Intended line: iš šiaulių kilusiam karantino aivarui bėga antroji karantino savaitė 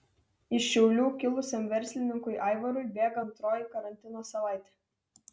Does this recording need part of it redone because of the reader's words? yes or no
yes